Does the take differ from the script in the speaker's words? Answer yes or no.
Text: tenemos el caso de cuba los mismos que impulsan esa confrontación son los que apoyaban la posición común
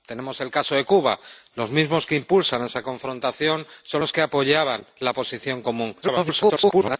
yes